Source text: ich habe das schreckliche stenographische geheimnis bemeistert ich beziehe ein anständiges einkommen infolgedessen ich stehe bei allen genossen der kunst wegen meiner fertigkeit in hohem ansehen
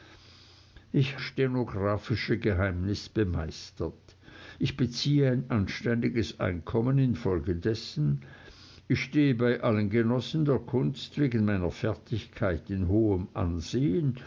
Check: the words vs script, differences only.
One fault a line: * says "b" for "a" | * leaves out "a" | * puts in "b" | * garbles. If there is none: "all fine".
* leaves out "habe das schreckliche"